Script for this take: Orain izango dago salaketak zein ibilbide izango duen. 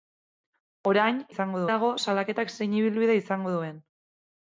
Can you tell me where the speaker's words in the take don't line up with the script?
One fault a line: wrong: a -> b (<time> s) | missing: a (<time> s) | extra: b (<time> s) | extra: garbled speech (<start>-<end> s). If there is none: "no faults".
no faults